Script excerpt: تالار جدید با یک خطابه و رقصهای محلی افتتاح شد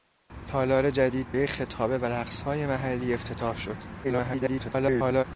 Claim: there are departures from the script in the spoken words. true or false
true